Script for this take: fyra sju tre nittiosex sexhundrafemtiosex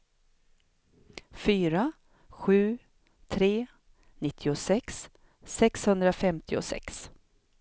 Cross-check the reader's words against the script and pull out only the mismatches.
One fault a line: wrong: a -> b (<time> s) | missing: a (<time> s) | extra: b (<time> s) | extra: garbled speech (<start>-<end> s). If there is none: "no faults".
no faults